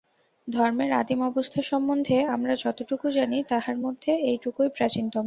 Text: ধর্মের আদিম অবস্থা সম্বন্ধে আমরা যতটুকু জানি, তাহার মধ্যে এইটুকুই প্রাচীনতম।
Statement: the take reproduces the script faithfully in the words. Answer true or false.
true